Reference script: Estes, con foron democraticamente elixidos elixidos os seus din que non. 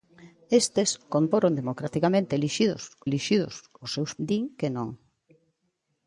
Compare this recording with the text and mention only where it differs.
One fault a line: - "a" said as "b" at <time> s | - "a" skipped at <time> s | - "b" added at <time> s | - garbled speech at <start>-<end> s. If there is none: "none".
none